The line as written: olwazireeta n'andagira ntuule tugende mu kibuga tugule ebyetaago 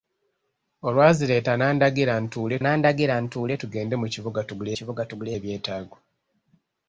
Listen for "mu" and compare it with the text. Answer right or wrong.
right